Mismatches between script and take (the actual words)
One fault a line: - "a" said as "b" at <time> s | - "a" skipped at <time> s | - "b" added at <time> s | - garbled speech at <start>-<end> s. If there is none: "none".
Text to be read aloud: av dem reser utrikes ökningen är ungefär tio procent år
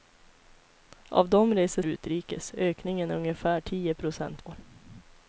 none